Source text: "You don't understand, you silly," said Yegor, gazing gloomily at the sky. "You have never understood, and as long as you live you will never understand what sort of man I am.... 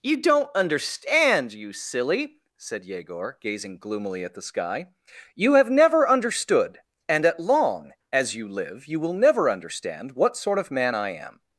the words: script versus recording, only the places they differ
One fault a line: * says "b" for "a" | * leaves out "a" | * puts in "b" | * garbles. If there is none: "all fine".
* says "at" for "as"